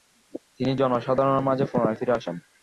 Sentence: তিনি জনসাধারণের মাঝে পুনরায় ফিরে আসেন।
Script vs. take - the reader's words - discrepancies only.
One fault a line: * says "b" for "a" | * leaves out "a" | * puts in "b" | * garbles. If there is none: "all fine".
all fine